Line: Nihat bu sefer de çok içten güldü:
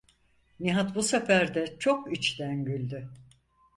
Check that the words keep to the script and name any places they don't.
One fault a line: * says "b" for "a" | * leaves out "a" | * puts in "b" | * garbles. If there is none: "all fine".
all fine